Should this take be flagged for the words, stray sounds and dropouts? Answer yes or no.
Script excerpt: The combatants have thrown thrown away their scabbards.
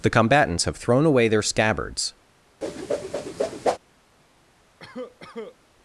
yes